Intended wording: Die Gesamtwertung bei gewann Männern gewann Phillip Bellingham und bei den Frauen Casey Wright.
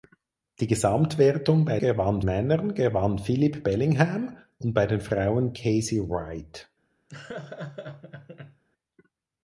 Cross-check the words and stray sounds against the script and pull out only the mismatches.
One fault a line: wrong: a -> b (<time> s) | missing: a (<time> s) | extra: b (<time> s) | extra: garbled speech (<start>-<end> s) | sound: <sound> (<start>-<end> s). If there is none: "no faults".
sound: laugh (7.1-8.6 s)